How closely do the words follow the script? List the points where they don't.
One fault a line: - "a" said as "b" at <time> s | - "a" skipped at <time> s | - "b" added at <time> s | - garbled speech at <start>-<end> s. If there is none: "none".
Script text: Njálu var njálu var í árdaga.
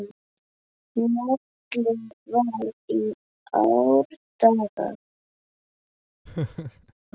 - "njálu var" skipped at 2.6 s